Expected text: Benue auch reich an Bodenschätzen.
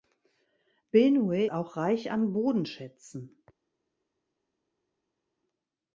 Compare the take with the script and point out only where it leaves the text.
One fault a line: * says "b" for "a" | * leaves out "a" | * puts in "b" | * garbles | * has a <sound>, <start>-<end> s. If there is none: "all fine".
all fine